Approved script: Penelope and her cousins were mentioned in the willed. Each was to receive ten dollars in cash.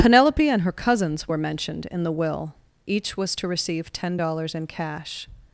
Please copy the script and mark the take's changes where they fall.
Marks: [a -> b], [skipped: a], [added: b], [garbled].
Penelope and her cousins were mentioned in the [willed. -> will] Each was to receive ten dollars in cash.